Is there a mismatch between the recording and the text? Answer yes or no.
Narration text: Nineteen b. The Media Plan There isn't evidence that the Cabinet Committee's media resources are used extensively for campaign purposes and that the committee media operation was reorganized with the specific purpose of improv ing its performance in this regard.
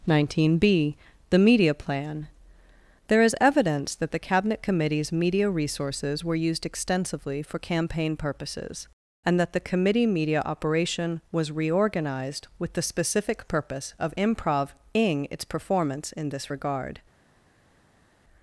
yes